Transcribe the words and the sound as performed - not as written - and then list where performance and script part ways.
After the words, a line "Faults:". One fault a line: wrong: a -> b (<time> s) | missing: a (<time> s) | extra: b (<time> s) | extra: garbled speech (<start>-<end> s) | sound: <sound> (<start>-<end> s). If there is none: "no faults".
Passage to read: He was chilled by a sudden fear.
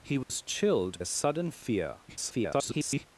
He was chilled a sudden fear. [garbled]
Faults:
sound: dropout (0.2-0.3 s)
missing: by (1.0 s)
extra: garbled speech (2.1-3.1 s)